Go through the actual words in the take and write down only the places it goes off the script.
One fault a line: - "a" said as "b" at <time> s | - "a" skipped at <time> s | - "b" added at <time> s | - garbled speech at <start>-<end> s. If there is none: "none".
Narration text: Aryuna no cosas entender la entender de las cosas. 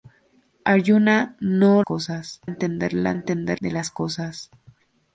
none